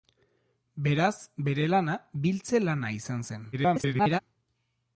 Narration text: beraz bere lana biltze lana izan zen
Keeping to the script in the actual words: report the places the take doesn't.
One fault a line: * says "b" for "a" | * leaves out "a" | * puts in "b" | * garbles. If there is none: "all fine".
* garbles